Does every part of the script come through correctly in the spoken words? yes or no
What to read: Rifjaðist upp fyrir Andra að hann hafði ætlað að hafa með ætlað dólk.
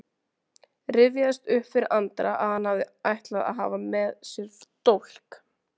no